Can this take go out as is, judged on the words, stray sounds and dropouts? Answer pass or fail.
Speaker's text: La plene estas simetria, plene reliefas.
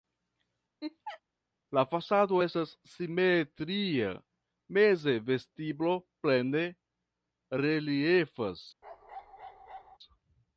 fail